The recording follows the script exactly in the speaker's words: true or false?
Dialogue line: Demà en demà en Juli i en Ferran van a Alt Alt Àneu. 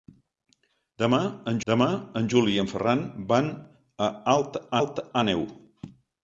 true